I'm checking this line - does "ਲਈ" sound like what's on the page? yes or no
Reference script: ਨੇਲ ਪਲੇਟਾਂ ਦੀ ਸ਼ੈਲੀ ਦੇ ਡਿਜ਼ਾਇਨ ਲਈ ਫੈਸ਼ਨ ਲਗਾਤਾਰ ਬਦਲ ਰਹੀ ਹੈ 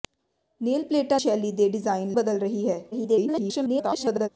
no